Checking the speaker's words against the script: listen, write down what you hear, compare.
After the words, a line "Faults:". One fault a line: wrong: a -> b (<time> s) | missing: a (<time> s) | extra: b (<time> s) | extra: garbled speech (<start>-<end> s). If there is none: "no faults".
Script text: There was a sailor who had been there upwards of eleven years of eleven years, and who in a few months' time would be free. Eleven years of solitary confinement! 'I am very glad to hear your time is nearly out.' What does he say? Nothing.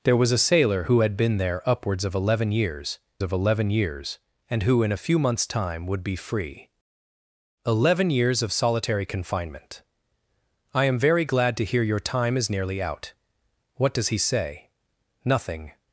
There was a sailor who had been there upwards of eleven years of eleven years, and who in a few months' time would be free. Eleven years of solitary confinement! 'I am very glad to hear your time is nearly out.' What does he say? Nothing.
Faults:
no faults